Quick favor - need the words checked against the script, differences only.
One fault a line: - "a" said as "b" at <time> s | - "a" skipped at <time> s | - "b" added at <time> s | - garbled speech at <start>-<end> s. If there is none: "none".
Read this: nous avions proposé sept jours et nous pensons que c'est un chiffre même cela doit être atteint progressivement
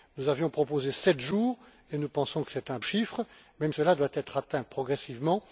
none